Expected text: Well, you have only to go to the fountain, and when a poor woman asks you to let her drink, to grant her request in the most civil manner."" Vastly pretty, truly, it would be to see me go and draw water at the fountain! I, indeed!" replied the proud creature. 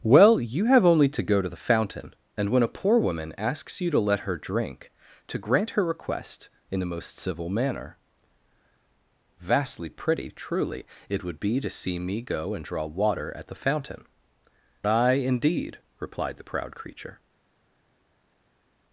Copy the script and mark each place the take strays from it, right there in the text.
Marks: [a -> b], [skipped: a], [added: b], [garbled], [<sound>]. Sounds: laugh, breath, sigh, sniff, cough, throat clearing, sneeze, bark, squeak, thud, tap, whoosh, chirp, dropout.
Well, you have only to go to the fountain, and when a poor woman asks you to let her drink, to grant her request in the most civil manner."" Vastly pretty, truly, it would be to see me go and draw water at the fountain! I, indeed!" replied the proud creature.